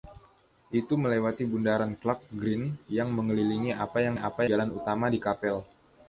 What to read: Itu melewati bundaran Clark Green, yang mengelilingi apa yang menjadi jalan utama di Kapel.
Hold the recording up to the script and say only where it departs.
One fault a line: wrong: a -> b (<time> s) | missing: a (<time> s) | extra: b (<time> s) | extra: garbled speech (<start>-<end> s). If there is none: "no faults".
wrong: menjadi -> apa (4.1 s)